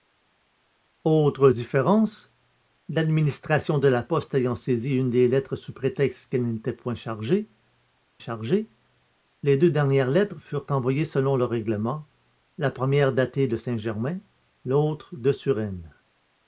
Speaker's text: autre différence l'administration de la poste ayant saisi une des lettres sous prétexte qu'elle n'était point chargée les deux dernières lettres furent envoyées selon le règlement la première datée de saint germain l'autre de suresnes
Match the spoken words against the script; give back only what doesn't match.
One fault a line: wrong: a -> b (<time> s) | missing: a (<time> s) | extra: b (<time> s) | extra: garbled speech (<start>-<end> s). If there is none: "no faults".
extra: chargée (8.2 s)